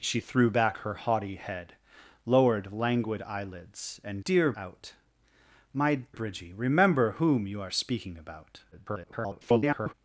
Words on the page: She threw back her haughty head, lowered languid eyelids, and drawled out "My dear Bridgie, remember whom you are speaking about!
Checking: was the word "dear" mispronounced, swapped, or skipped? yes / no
yes